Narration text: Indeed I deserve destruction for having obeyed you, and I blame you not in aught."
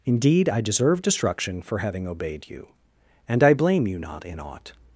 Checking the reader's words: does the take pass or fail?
pass